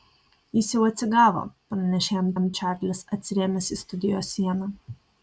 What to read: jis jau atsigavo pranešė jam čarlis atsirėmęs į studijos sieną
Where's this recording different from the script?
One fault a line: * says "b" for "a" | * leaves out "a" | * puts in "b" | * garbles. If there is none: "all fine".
* puts in "jam"